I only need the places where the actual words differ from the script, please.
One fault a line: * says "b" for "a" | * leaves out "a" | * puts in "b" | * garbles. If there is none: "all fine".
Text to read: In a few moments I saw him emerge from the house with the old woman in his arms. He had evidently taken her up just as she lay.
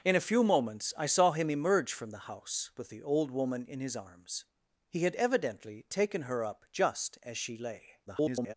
* garbles